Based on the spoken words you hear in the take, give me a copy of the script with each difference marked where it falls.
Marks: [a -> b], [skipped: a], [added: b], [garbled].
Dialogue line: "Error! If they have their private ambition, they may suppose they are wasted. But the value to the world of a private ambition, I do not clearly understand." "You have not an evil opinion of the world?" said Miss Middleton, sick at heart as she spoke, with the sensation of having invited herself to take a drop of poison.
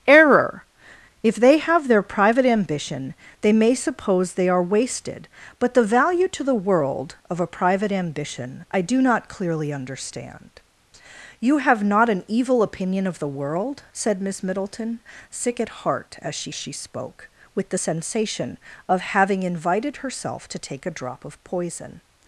"Error! If they have their private ambition, they may suppose they are wasted. But the value to the world of a private ambition, I do not clearly understand." "You have not an evil opinion of the world?" said Miss Middleton, sick at heart as she [added: she] spoke, with the sensation of having invited herself to take a drop of poison.